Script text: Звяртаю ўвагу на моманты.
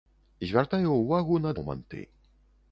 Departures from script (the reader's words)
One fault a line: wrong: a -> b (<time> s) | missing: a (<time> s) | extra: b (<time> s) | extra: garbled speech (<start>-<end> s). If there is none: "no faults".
no faults